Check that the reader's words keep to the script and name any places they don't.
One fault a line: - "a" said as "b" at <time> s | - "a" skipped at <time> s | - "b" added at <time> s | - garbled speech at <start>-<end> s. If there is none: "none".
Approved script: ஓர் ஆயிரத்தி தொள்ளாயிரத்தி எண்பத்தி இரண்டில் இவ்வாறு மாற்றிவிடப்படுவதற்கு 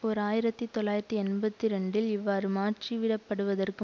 none